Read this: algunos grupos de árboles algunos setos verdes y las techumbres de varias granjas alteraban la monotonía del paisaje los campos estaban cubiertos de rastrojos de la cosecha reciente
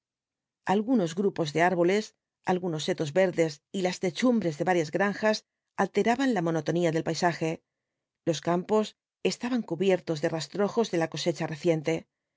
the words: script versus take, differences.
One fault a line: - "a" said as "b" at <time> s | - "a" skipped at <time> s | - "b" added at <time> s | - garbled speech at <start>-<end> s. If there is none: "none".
none